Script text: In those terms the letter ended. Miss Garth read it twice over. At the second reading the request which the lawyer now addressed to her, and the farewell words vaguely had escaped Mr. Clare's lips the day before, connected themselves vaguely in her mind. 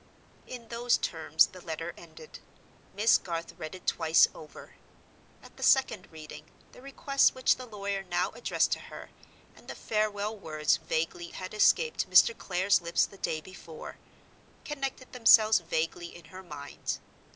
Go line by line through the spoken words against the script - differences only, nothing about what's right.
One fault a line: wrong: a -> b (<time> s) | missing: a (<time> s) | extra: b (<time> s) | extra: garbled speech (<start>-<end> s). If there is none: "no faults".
no faults